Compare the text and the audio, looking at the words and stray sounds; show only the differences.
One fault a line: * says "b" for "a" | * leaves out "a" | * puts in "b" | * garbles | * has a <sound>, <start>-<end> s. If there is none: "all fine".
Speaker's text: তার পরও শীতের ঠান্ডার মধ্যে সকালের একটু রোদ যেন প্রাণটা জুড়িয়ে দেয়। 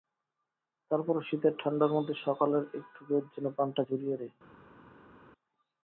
all fine